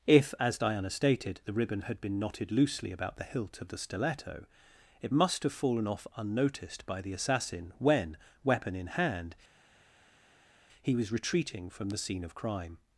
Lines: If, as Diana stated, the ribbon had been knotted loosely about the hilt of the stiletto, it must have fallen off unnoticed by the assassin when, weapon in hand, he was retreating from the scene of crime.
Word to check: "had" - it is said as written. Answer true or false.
true